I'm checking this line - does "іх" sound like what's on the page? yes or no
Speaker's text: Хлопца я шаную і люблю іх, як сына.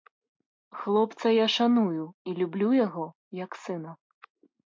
no